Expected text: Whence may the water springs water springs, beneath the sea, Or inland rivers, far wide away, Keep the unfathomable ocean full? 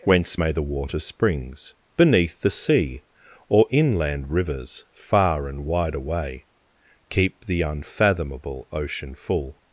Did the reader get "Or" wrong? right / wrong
right